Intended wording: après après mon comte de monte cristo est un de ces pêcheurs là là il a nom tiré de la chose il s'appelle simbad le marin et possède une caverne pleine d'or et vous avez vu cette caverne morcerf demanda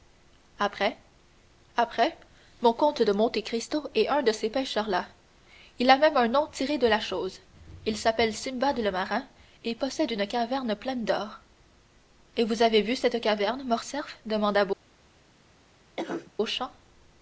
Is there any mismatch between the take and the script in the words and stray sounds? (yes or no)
yes